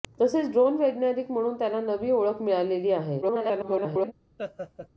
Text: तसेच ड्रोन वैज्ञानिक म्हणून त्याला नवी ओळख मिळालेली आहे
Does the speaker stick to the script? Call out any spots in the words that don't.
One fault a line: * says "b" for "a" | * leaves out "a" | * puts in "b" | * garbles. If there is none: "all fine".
* garbles